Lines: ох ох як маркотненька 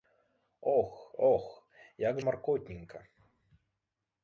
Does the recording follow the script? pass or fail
pass